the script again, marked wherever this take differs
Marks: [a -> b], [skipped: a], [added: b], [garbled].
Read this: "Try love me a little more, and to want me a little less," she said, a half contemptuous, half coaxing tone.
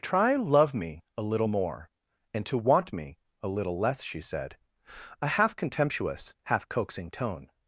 "Try love me a little more, and to want me a little less," she said, a half contemptuous, half coaxing tone.